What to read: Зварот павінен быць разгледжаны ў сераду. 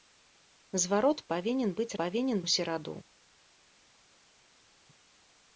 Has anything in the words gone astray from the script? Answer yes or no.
yes